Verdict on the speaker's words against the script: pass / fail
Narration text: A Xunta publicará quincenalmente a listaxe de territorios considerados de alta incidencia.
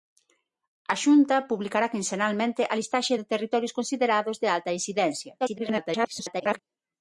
fail